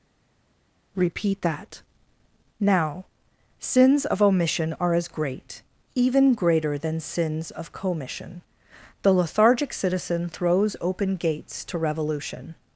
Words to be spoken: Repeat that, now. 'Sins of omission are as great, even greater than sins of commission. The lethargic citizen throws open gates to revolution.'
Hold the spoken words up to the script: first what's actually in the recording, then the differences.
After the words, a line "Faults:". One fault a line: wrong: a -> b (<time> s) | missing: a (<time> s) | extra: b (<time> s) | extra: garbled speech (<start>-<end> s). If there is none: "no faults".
Repeat that, now. 'Sins of omission are as great, even greater than sins of commission. The lethargic citizen throws open gates to revolution.'
Faults:
no faults